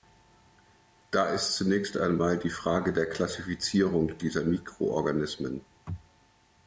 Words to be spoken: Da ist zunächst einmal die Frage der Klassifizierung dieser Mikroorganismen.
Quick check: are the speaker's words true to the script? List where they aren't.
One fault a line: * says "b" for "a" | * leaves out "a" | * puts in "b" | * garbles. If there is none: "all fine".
all fine